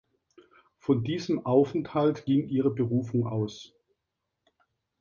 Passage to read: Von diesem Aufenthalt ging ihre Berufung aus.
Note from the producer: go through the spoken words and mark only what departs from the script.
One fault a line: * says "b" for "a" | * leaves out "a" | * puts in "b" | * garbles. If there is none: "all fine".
all fine